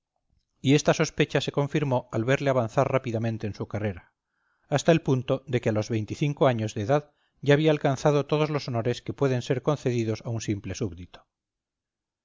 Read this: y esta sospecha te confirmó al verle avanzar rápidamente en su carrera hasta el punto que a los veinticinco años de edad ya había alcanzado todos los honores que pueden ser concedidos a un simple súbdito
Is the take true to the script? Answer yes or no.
no